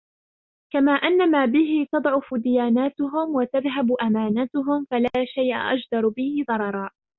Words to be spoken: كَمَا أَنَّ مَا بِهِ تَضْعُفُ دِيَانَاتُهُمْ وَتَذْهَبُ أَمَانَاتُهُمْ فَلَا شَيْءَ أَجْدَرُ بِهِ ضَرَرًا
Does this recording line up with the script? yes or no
yes